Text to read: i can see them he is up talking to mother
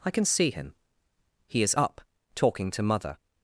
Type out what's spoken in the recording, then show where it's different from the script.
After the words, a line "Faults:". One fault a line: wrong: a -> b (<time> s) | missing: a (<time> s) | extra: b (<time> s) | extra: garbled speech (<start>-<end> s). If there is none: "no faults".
i can see him he is up talking to mother
Faults:
wrong: them -> him (0.5 s)